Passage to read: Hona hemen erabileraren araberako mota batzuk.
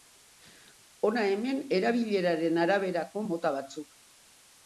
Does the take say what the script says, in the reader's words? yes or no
yes